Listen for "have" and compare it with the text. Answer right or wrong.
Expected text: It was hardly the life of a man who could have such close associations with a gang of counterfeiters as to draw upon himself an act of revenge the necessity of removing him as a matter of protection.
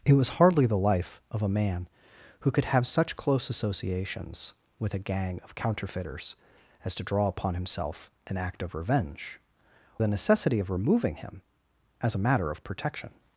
right